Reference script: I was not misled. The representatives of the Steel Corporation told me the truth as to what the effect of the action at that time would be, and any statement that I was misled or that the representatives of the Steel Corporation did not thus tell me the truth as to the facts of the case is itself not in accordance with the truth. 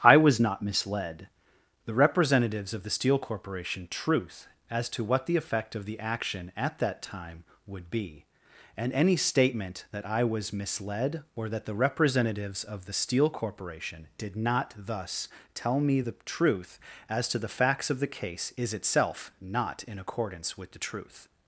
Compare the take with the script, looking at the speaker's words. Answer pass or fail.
fail